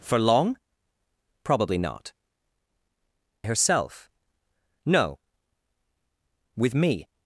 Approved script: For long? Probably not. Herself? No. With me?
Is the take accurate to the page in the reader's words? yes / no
yes